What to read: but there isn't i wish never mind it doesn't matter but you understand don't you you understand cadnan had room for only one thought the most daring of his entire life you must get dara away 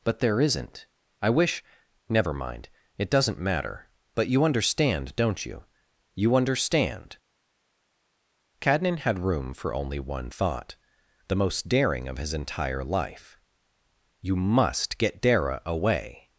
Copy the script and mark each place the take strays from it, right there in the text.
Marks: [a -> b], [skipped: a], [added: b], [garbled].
but there isn't i wish never mind it doesn't matter but you understand don't you you understand cadnan had room for only one thought the most daring of his entire life you must get dara away